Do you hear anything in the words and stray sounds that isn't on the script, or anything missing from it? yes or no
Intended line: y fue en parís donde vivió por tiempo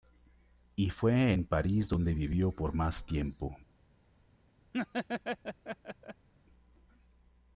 yes